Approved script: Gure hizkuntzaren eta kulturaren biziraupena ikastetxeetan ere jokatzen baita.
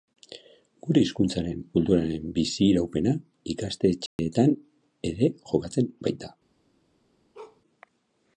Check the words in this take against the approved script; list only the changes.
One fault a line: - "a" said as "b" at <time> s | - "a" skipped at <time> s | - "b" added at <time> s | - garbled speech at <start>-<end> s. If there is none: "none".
- "eta" skipped at 1.6 s